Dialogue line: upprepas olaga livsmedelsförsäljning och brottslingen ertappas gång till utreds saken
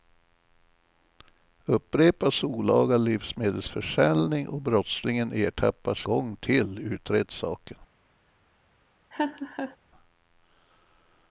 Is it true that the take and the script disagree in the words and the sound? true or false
true